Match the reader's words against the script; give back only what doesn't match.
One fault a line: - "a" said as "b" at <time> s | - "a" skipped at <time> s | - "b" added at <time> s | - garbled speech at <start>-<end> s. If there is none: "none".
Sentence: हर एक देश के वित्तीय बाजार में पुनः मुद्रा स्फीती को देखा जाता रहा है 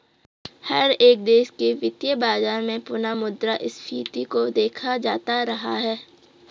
none